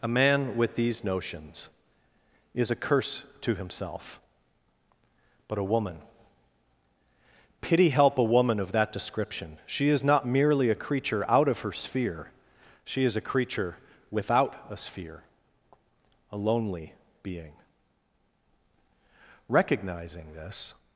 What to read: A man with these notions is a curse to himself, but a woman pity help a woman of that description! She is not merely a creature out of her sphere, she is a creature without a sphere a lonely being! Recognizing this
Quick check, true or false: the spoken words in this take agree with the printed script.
true